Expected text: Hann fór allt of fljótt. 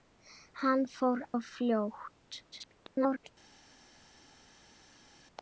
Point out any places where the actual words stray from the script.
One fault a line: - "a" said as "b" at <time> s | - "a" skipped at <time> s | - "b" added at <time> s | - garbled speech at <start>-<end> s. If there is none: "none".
- "allt" skipped at 1.2 s
- garbled speech at 2.5-3.3 s